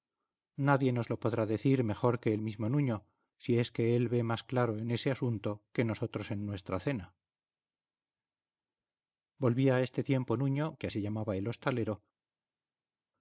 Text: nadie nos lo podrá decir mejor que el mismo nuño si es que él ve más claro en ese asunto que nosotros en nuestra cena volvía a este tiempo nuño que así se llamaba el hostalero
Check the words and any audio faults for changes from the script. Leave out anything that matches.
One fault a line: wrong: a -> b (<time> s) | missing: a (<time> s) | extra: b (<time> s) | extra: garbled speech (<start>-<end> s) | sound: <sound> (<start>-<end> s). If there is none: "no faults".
missing: así (10.9 s)